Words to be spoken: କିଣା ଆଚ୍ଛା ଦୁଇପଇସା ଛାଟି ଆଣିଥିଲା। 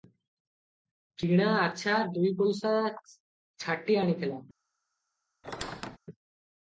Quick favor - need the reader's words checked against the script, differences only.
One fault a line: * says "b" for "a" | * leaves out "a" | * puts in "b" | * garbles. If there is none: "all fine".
all fine